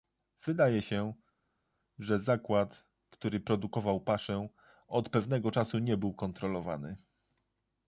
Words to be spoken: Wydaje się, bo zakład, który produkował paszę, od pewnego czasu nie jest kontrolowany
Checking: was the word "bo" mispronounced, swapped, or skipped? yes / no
yes